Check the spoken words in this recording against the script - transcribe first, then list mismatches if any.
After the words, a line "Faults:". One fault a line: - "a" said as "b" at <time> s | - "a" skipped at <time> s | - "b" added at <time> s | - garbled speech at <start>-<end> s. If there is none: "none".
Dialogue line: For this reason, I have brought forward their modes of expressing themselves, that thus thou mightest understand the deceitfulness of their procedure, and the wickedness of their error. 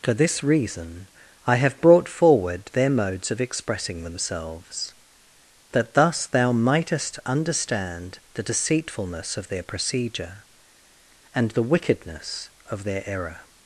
For this reason, I have brought forward their modes of expressing themselves, that thus thou mightest understand the deceitfulness of their procedure, and the wickedness of their error.
Faults:
none